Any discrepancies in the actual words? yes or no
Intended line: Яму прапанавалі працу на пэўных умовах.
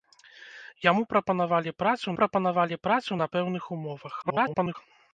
yes